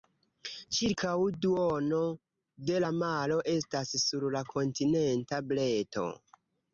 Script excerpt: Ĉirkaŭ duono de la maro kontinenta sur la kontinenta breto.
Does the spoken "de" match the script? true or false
true